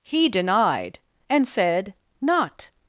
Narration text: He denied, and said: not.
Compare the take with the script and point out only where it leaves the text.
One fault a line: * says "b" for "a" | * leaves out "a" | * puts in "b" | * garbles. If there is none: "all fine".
all fine